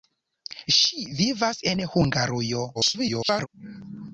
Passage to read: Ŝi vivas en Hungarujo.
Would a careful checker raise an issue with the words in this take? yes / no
yes